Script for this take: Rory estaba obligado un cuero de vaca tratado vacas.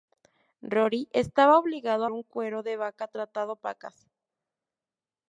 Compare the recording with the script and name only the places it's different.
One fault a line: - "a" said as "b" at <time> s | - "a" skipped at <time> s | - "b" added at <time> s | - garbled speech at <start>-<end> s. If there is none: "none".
none